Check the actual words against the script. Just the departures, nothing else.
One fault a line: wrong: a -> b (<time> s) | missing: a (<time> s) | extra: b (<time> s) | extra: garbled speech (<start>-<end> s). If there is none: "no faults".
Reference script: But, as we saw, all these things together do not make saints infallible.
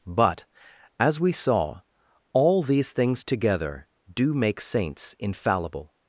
missing: not (4.3 s)